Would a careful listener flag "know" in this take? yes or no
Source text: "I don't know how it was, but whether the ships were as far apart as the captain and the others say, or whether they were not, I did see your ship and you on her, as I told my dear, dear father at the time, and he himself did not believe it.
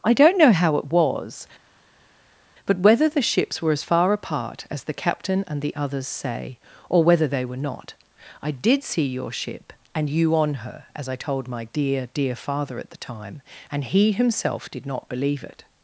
no